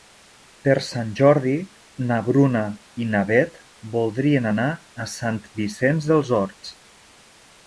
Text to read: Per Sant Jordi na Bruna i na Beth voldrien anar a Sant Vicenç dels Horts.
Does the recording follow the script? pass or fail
pass